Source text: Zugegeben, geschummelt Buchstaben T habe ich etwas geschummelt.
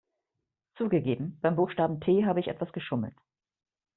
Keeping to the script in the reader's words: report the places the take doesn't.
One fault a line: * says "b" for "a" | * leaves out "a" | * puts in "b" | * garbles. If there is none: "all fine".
* says "beim" for "geschummelt"